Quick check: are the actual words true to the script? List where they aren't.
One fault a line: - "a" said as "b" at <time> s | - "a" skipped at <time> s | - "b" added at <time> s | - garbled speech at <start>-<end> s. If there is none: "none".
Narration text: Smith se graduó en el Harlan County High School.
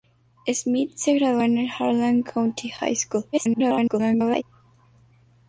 - garbled speech at 3.3-4.4 s